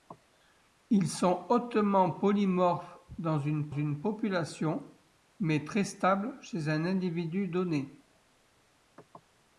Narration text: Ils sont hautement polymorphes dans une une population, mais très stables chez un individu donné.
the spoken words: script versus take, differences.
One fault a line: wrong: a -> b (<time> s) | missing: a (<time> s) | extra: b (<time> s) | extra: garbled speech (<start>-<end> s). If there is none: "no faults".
no faults